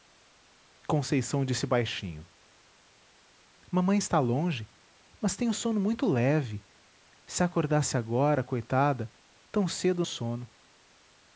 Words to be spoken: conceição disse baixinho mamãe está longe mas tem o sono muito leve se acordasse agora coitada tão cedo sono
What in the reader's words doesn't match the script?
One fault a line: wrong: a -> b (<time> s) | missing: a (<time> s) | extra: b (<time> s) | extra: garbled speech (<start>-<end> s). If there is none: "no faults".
no faults